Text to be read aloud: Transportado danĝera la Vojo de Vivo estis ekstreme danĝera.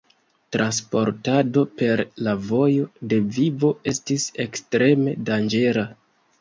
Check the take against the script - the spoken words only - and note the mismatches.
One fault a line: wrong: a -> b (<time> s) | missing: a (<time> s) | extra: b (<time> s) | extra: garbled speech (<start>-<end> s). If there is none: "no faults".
wrong: danĝera -> per (1.8 s)